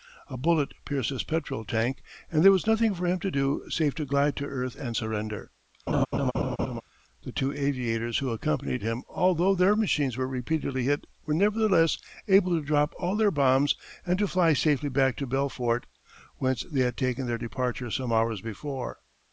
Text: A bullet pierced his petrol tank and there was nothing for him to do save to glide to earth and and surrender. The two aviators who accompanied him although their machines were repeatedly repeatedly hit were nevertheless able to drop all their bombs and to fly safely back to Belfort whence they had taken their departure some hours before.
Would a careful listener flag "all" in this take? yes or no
no